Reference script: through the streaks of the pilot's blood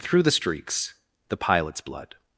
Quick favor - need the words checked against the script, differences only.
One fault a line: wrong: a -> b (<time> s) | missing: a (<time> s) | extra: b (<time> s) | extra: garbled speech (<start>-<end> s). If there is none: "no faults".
missing: of (0.9 s)